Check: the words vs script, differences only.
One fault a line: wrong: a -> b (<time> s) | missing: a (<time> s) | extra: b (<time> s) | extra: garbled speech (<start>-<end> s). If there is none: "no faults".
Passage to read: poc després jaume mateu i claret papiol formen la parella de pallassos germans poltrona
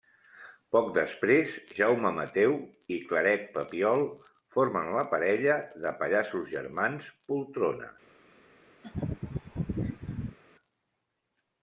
no faults